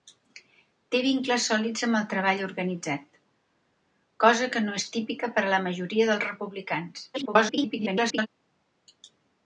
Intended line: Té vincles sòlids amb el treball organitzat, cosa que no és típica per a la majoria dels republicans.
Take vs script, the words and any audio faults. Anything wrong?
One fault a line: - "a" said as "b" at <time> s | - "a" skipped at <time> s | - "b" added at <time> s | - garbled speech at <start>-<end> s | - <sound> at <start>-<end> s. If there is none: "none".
- garbled speech at 7.1-8.3 s